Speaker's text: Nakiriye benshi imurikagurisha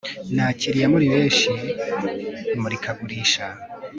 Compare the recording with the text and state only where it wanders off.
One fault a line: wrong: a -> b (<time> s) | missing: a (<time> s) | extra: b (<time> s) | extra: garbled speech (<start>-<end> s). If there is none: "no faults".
extra: muri (0.9 s)